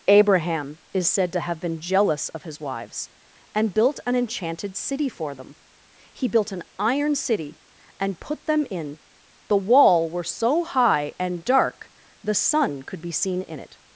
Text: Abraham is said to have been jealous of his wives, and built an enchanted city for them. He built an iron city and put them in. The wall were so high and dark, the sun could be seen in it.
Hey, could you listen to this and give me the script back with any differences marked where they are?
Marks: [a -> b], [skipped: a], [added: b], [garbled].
Abraham is said to have been jealous of his wives, and built an enchanted city for them. He built an iron city and put them in. The wall were so high and dark, the sun could be seen in it.